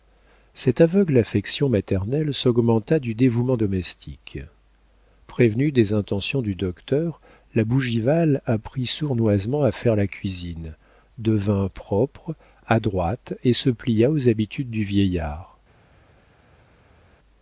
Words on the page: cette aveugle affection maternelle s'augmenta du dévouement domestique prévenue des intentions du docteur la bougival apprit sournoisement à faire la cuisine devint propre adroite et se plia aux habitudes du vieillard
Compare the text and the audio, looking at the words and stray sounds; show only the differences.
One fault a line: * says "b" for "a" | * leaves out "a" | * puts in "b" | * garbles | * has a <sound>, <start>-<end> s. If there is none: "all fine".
all fine